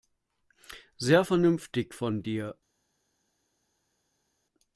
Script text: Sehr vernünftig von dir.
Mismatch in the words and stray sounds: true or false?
false